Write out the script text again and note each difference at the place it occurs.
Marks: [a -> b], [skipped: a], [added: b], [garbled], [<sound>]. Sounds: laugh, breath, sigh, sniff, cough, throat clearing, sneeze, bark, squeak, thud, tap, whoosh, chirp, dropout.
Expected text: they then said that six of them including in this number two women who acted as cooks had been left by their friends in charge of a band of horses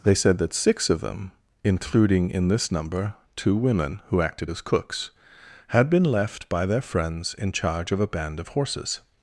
they [skipped: then] said that six of them including in this number two women who acted as cooks had been left by their friends in charge of a band of horses